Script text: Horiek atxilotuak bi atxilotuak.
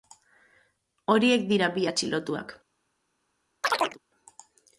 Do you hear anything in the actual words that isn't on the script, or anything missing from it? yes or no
yes